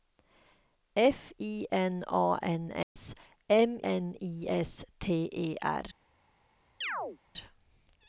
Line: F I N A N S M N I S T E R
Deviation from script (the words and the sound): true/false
true